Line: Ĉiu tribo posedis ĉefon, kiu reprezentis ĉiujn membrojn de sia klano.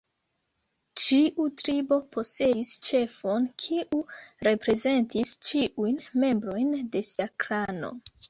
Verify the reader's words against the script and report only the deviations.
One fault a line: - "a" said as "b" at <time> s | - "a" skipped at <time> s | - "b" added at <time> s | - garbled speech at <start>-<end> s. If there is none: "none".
none